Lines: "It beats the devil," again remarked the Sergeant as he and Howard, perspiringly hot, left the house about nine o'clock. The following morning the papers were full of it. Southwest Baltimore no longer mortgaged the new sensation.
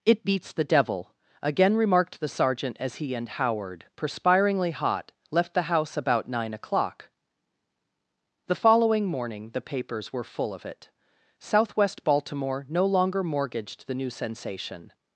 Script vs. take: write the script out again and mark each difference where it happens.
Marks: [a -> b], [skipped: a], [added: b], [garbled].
"It beats the devil," again remarked the Sergeant as he and Howard, perspiringly hot, left the house about nine o'clock. The following morning the papers were full of it. Southwest Baltimore no longer mortgaged the new sensation.